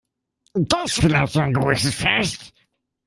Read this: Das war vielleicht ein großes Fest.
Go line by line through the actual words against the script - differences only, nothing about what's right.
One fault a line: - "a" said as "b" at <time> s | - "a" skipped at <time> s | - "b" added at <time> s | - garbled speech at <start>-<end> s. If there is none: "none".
- "war" skipped at 1.0 s